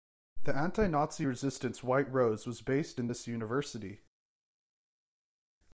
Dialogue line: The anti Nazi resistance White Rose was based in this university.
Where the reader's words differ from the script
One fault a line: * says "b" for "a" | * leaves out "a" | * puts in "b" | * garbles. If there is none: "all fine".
all fine